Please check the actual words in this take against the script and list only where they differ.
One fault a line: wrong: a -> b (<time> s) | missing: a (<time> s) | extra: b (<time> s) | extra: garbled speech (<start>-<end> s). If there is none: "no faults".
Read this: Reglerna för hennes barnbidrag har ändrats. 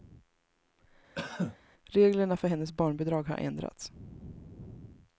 no faults